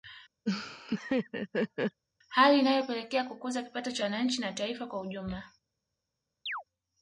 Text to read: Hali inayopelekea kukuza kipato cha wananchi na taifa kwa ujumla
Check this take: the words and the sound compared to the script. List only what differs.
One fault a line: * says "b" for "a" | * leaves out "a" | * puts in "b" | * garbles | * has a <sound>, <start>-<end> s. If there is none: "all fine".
* has a laugh, 0.5-2.0 s
* has a chirp, 6.5-6.6 s